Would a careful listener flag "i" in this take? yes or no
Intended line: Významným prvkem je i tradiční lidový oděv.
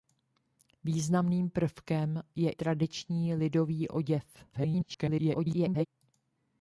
yes